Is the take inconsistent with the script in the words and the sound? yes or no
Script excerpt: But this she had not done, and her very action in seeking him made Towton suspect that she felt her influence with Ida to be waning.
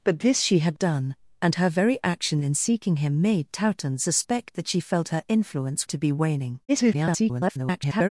yes